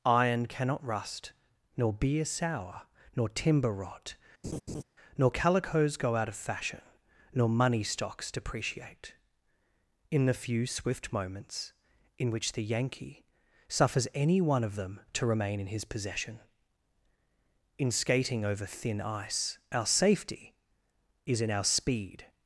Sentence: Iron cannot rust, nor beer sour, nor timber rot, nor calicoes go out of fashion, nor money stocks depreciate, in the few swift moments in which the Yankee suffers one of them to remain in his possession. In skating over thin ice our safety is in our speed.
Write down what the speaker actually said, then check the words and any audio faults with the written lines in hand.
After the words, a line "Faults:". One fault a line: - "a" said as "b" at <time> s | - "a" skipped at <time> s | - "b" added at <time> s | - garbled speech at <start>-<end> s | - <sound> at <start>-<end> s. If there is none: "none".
Iron cannot rust, nor beer sour, nor timber rot, nor calicoes go out of fashion, nor money stocks depreciate, in the few swift moments in which the Yankee suffers any one of them to remain in his possession. In skating over thin ice our safety is in our speed.
Faults:
- laugh at 4.4-4.8 s
- "any" added at 14.1 s